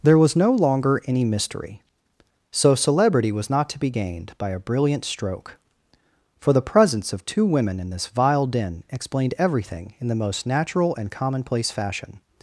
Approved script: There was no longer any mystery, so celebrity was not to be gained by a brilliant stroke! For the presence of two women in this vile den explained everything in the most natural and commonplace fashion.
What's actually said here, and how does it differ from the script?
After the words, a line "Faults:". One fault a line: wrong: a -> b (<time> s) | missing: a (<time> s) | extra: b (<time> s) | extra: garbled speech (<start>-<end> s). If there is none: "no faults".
There was no longer any mystery, so celebrity was not to be gained by a brilliant stroke! For the presence of two women in this vile den explained everything in the most natural and commonplace fashion.
Faults:
no faults